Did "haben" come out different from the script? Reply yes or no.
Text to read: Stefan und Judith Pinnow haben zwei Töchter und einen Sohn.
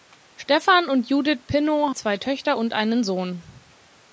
yes